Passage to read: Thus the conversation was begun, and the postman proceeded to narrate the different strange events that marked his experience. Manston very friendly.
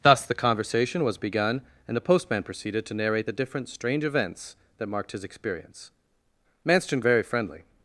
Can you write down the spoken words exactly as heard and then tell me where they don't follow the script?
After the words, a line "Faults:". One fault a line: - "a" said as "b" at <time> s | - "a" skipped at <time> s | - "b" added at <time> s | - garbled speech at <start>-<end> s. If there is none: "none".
Thus the conversation was begun, and the postman proceeded to narrate the different strange events that marked his experience. Manston very friendly.
Faults:
none